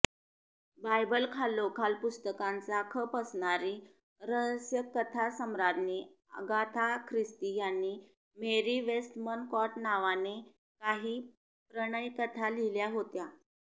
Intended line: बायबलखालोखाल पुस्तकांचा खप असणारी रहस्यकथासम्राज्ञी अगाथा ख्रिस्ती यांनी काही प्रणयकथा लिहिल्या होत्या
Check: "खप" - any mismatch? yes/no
no